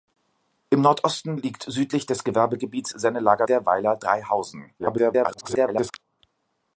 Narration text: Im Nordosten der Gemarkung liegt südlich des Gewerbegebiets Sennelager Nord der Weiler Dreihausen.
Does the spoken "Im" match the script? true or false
true